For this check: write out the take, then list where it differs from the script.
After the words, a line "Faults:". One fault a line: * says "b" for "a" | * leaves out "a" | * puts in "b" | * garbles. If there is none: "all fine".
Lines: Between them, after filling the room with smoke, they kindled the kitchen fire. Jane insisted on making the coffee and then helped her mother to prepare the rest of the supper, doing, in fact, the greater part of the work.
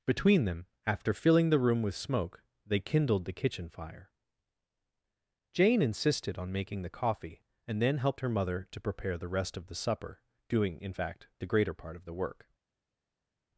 Between them, after filling the room with smoke, they kindled the kitchen fire. Jane insisted on making the coffee and then helped her mother to prepare the rest of the supper, doing, in fact, the greater part of the work.
Faults:
all fine